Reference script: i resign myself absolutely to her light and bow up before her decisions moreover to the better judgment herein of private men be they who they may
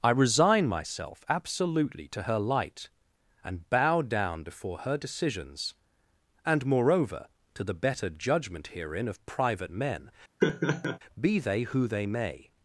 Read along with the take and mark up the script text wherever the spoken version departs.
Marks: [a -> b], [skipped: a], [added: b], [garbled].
i resign myself absolutely to her light and bow [up -> down] before her decisions [added: and] moreover to the better judgment herein of private men be they who they may